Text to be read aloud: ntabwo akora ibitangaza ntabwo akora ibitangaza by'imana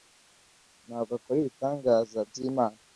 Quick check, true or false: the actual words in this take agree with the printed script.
false